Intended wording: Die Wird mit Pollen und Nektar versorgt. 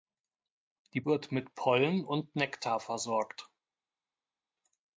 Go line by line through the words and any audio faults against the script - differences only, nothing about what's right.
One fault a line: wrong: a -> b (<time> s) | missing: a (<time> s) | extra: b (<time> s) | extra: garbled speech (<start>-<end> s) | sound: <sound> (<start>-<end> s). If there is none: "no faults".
no faults